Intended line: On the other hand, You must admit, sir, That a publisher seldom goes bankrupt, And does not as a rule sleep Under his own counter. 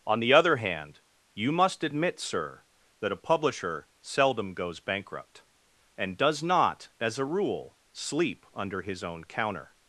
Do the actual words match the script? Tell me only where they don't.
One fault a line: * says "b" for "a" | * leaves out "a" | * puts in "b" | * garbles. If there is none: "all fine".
all fine